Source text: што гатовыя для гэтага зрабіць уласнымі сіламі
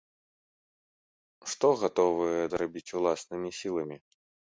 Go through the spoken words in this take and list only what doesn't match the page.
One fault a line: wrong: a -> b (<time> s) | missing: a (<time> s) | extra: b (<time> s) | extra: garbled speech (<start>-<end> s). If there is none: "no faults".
missing: для гэтага (2.4 s)